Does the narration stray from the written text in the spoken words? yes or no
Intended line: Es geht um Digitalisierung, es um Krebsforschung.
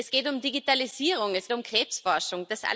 no